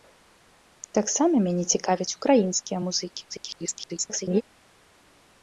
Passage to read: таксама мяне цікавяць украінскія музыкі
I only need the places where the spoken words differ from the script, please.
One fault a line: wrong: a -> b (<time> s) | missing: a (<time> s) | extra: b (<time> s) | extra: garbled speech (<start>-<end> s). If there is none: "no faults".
extra: garbled speech (3.3-4.4 s)